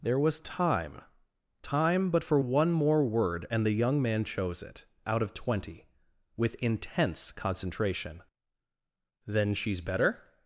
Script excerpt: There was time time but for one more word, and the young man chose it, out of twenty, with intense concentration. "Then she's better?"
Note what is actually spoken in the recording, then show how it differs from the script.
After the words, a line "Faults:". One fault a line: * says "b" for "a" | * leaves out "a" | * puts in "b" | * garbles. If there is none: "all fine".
There was time time but for one more word, and the young man chose it, out of twenty, with intense concentration. "Then she's better?"
Faults:
all fine